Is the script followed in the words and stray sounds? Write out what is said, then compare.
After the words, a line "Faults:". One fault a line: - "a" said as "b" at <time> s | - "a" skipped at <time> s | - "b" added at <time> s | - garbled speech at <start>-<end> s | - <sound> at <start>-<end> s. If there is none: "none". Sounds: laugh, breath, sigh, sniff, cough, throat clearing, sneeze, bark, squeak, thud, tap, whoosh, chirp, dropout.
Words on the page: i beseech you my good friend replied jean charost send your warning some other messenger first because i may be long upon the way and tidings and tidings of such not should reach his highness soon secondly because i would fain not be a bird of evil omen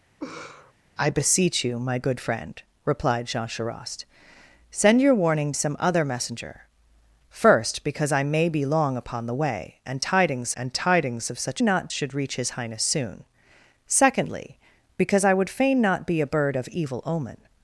i beseech you my good friend replied jean charost send your warning some other messenger first because i may be long upon the way and tidings and tidings of such not should reach his highness soon secondly because i would fain not be a bird of evil omen
Faults:
- laugh at 0.2-0.7 s